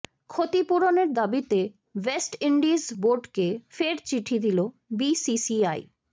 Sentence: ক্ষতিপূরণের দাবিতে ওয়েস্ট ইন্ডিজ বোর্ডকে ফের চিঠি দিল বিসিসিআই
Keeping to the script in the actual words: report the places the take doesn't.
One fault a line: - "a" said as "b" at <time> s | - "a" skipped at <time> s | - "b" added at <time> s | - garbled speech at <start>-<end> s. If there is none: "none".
none